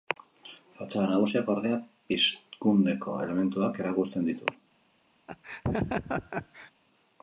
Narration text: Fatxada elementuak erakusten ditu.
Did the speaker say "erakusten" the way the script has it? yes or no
yes